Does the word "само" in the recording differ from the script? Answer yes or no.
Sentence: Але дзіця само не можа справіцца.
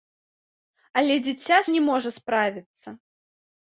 yes